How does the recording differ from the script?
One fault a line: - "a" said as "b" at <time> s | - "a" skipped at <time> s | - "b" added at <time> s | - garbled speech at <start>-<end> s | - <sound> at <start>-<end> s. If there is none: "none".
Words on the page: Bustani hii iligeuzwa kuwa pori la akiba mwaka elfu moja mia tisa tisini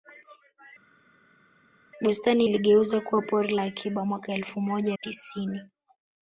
- "hii" skipped at 2.4 s
- "mia tisa" skipped at 5.0 s